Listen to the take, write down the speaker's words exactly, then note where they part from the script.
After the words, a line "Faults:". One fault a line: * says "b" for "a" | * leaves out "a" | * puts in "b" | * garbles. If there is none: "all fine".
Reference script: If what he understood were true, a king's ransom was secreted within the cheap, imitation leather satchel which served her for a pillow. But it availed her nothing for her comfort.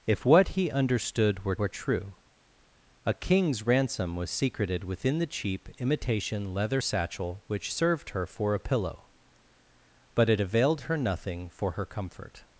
If what he understood were were true, a king's ransom was secreted within the cheap, imitation leather satchel which served her for a pillow. But it availed her nothing for her comfort.
Faults:
* puts in "were"